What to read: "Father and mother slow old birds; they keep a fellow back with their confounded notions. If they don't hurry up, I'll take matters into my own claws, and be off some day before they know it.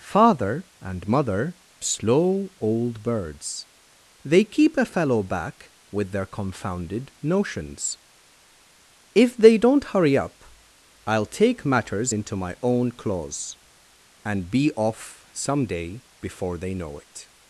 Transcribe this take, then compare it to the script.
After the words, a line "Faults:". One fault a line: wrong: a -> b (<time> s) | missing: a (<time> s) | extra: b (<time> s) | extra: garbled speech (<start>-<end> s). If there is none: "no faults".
"Father and mother slow old birds; they keep a fellow back with their confounded notions. If they don't hurry up, I'll take matters into my own claws, and be off some day before they know it.
Faults:
no faults